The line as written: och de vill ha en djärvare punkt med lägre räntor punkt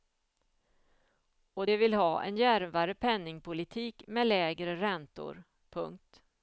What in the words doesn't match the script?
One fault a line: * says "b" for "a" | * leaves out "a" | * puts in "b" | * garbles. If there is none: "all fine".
* says "penningpolitik" for "punkt"